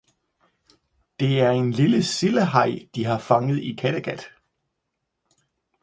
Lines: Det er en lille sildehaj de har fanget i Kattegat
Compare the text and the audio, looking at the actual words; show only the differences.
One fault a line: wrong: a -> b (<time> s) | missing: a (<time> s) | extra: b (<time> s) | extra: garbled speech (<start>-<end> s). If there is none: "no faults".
no faults